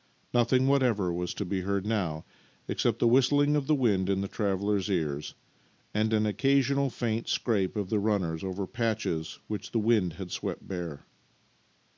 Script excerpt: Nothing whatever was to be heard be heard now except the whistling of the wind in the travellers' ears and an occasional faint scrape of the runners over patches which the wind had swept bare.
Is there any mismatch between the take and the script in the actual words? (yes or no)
yes